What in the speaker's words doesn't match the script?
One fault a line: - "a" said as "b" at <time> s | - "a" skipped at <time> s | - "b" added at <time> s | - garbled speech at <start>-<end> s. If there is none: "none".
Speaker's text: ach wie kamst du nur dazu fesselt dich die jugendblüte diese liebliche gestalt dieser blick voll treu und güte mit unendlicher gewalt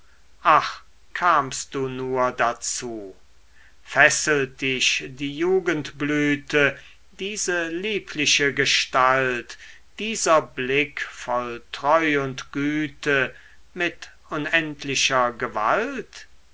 - "wie" skipped at 0.8 s